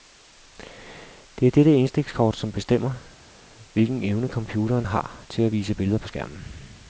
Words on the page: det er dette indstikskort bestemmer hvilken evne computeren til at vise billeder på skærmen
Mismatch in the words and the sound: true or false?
true